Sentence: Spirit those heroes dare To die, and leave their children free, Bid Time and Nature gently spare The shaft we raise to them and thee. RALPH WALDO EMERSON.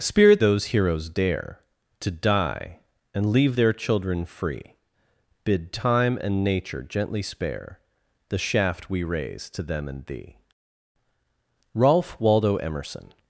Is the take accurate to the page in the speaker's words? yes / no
yes